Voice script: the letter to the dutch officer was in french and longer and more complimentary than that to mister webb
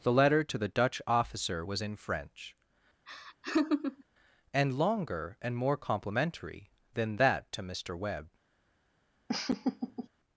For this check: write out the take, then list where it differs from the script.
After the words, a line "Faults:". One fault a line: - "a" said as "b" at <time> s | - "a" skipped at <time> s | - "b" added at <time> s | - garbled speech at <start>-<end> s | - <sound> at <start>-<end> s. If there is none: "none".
the letter to the dutch officer was in french and longer and more complimentary than that to mister webb
Faults:
- laugh at 3.1-4.0 s
- laugh at 9.3-10.1 s